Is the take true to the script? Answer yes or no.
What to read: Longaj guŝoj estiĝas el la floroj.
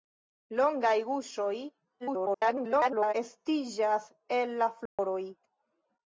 no